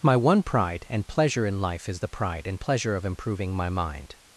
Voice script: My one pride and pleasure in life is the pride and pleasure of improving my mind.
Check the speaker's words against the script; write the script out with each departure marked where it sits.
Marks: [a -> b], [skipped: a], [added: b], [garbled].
My one pride and pleasure in life is the pride and pleasure of improving my mind.